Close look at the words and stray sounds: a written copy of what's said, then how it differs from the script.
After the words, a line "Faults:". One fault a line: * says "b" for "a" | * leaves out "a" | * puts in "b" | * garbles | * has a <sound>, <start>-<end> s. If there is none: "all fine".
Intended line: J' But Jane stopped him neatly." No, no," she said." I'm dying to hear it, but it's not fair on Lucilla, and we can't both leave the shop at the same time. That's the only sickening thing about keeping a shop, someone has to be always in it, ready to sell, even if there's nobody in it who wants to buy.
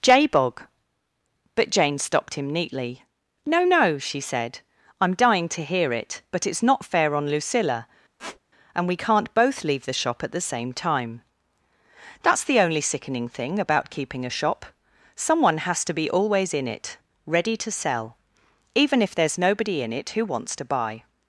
J' bog But Jane stopped him neatly." No, no," she said." I'm dying to hear it, but it's not fair on Lucilla, and we can't both leave the shop at the same time. That's the only sickening thing about keeping a shop, someone has to be always in it, ready to sell, even if there's nobody in it who wants to buy.
Faults:
* puts in "bog"
* has a squeak, 8.2-8.4 s